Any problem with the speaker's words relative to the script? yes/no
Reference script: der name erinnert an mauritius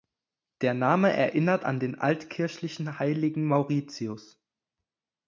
yes